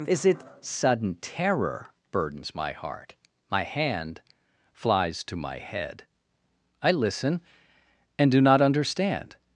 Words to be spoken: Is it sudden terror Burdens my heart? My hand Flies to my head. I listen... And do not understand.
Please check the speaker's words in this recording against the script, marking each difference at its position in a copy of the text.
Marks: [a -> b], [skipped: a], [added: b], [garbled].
Is it sudden terror Burdens my heart? My hand Flies to my head. I listen... And do not understand.